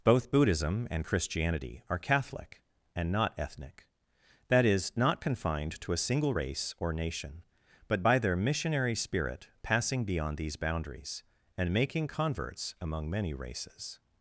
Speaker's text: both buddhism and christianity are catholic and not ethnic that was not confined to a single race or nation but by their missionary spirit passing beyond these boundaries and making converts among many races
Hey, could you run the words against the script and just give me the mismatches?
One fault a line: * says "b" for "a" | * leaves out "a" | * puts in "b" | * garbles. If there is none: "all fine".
* says "is" for "was"